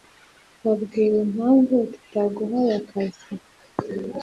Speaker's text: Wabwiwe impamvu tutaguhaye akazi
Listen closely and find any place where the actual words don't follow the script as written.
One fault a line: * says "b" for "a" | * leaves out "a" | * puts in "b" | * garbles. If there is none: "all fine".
all fine